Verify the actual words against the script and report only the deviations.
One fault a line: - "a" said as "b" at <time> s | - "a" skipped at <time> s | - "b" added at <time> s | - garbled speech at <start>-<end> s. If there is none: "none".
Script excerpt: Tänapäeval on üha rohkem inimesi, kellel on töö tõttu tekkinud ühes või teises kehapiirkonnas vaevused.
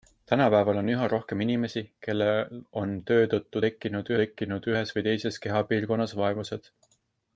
- "tekkinud" added at 4.2 s